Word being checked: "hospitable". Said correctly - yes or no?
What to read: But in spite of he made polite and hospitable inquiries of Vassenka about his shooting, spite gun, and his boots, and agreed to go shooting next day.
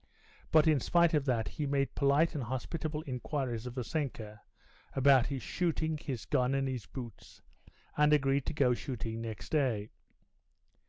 yes